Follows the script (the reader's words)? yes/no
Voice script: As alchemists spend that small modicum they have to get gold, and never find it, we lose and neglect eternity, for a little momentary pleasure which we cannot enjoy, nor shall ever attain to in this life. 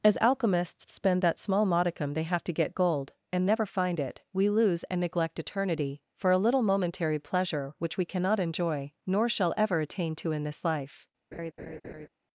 yes